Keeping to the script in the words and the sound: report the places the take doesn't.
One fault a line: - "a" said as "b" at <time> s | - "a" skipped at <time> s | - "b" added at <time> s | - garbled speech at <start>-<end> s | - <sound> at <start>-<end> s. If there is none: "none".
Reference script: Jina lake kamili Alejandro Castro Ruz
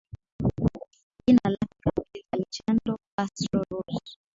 none